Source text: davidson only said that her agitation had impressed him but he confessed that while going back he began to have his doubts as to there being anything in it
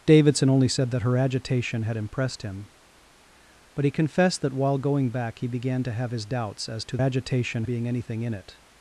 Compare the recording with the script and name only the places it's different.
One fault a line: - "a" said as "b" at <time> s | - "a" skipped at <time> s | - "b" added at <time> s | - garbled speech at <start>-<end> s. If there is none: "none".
- "there" said as "agitation" at 7.0 s